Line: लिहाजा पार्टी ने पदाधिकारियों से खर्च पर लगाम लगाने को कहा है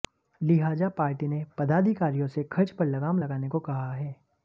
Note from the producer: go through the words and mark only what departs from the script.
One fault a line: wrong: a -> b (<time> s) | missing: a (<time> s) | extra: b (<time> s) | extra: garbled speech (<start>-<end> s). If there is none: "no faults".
no faults